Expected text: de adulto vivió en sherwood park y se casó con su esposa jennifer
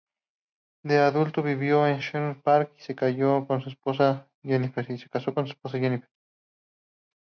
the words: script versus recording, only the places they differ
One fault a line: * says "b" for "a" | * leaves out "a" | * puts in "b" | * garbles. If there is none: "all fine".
all fine